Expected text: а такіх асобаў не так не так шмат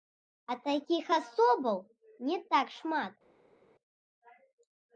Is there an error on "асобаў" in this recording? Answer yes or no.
no